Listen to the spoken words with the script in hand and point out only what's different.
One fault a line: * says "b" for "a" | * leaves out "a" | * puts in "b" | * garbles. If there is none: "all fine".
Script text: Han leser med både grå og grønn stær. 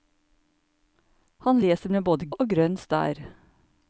* leaves out "grå"